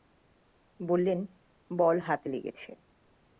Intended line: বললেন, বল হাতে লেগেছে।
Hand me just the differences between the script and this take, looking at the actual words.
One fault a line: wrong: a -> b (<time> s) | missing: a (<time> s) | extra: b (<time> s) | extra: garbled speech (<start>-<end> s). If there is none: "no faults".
no faults